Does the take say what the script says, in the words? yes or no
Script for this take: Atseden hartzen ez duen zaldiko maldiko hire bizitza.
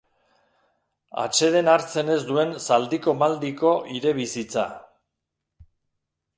yes